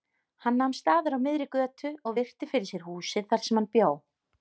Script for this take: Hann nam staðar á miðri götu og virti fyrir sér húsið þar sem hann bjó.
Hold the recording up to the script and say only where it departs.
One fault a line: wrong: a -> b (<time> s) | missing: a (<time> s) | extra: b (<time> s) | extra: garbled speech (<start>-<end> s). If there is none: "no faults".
no faults